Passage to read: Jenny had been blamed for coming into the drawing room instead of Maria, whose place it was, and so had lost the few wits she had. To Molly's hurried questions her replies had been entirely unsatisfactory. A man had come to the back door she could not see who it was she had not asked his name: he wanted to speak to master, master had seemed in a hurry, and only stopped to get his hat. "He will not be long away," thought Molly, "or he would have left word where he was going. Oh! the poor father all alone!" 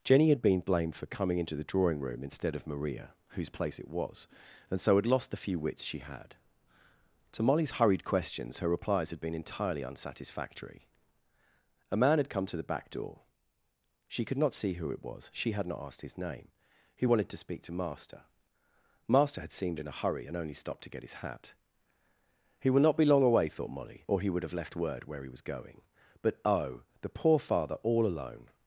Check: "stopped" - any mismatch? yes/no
no